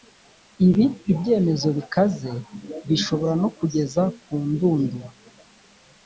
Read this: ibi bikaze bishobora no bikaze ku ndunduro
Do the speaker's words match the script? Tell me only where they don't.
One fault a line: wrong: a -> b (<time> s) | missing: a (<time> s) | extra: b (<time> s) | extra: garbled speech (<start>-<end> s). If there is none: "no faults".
extra: ibyemezo (1.1 s)
wrong: bikaze -> kugeza (3.6 s)